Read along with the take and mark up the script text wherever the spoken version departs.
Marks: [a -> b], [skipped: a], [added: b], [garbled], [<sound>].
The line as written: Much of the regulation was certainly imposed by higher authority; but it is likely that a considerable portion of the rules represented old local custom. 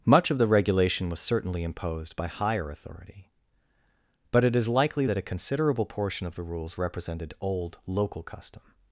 Much of the regulation was certainly imposed by higher authority; but it is likely that a considerable portion of the rules represented old local custom.